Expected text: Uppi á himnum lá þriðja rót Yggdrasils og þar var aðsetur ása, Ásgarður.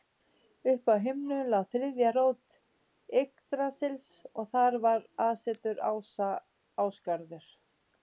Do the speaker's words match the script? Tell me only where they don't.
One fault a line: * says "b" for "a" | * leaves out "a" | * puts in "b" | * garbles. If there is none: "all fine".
all fine